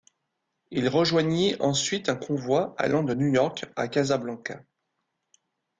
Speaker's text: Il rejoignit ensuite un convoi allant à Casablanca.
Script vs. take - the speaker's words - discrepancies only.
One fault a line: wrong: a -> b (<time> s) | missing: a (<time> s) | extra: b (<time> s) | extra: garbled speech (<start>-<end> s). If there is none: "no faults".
extra: de New York (3.0 s)